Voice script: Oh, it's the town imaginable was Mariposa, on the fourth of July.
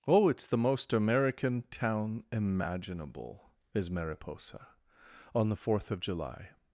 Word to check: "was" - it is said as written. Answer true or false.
false